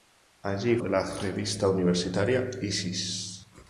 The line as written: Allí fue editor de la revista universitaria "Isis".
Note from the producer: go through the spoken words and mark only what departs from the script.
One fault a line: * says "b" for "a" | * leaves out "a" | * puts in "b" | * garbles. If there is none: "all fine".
* leaves out "fue editor"